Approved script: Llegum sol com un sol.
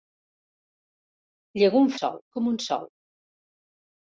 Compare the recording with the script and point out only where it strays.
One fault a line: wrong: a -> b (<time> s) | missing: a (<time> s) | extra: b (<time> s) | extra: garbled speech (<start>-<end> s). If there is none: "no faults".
no faults